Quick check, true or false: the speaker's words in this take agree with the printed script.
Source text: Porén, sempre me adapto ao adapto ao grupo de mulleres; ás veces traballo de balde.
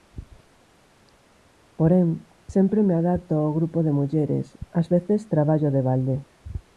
false